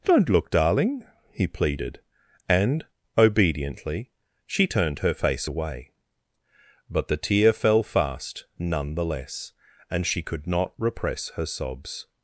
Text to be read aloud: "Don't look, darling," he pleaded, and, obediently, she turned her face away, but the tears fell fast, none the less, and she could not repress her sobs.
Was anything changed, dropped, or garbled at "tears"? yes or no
yes